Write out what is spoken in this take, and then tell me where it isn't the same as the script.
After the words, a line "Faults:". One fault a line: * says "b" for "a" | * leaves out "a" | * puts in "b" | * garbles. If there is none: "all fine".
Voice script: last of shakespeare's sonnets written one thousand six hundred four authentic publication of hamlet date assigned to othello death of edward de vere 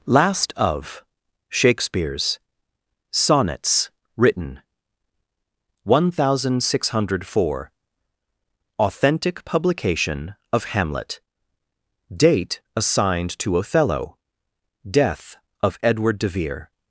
last of shakespeare's sonnets written one thousand six hundred four authentic publication of hamlet date assigned to othello death of edward de vere
Faults:
all fine